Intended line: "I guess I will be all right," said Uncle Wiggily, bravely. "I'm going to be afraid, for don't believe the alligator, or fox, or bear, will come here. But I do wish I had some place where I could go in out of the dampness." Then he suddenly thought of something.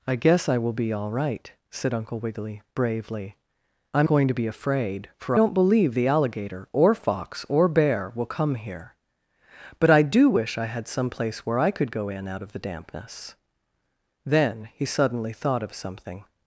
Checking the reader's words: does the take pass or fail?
pass